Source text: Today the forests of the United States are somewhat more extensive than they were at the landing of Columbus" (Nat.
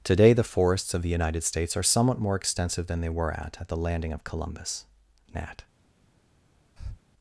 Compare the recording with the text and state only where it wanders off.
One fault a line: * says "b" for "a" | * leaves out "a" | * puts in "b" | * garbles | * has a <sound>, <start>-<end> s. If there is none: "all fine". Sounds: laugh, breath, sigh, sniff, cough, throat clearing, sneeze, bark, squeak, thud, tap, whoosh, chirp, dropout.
* puts in "at"
* has a breath, 6.8-7.0 s